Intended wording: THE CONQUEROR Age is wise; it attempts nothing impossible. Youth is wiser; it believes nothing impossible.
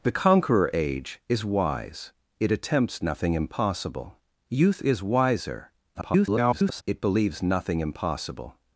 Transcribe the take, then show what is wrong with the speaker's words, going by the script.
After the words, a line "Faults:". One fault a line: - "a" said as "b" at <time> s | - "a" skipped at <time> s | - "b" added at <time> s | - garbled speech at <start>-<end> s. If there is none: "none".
THE CONQUEROR Age is wise; it attempts nothing impossible. Youth is wiser; [garbled] it believes nothing impossible.
Faults:
- garbled speech at 5.9-6.8 s